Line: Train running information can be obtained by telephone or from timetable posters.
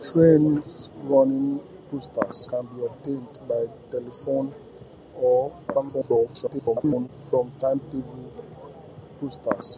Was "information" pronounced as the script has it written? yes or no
no